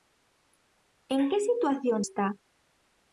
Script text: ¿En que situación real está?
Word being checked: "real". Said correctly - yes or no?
no